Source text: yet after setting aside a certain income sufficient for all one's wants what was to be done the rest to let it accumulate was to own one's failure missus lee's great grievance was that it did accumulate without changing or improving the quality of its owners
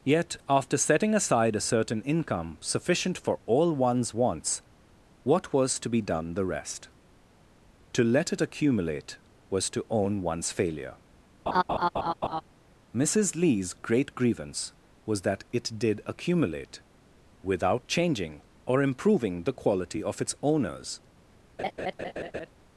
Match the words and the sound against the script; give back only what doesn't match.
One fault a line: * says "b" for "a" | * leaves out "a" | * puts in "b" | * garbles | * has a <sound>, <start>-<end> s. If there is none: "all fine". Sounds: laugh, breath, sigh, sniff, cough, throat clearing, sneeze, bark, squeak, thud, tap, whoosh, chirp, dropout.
* has a laugh, 11.5-12.4 s
* has a laugh, 21.6-22.5 s